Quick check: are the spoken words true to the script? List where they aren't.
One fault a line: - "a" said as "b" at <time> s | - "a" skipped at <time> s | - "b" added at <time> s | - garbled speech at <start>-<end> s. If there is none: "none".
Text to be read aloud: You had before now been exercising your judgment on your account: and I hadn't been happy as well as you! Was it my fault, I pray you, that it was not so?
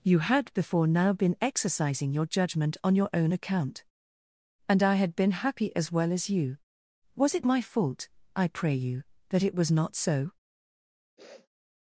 - "own" added at 3.1 s
- "hadn't" said as "had" at 4.9 s